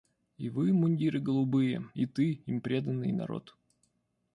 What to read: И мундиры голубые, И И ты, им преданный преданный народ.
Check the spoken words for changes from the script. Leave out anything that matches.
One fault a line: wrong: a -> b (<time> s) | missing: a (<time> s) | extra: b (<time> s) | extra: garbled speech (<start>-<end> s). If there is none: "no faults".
extra: вы (0.5 s)
missing: И (2.1 s)
missing: преданный (3.1 s)